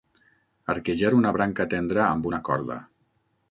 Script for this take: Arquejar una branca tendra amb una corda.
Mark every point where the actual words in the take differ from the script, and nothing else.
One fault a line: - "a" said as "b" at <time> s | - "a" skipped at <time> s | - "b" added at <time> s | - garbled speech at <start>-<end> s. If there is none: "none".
none